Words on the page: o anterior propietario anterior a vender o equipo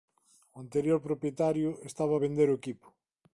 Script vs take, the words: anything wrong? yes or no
yes